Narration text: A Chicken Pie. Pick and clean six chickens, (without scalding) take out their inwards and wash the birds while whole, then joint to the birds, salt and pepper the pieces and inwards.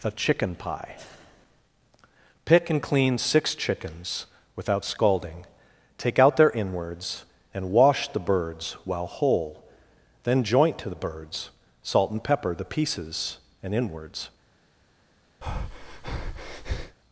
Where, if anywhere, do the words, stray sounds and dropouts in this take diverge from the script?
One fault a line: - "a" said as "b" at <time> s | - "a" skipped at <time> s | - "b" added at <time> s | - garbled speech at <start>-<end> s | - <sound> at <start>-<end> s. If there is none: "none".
- breath at 15.4-17.0 s